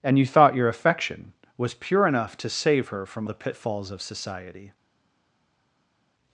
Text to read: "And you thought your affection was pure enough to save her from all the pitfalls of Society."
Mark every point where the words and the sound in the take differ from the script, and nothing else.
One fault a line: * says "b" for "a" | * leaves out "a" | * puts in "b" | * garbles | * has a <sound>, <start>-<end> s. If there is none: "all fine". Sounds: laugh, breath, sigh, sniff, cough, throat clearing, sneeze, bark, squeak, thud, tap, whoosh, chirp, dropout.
* leaves out "all"